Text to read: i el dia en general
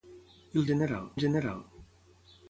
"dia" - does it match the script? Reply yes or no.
no